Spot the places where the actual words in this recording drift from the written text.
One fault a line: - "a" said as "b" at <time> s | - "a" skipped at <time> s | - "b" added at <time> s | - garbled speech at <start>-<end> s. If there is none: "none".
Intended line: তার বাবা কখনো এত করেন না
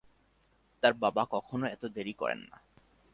- "দেরি" added at 1.9 s